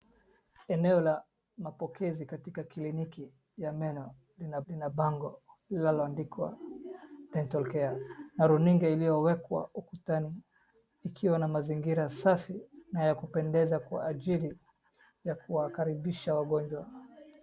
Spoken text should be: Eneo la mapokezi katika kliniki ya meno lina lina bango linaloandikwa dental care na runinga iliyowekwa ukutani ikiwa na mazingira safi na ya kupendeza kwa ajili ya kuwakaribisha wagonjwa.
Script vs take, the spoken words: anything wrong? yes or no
no